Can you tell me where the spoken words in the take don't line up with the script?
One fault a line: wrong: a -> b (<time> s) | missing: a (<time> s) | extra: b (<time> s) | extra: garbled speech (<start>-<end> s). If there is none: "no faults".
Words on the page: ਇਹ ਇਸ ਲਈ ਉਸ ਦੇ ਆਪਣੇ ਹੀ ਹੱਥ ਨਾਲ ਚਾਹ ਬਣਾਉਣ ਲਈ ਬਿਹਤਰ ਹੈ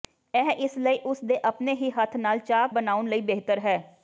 no faults